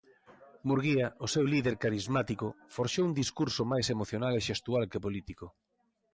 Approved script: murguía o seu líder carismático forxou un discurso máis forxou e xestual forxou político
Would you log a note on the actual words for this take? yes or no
yes